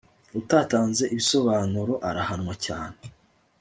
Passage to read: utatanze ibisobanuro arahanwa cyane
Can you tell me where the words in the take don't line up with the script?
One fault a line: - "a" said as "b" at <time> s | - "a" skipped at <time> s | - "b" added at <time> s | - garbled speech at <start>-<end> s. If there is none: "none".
none